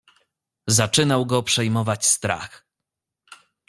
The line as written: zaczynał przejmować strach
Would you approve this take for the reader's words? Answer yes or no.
no